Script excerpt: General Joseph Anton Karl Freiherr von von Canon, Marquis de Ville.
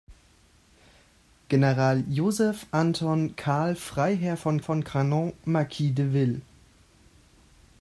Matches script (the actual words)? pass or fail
pass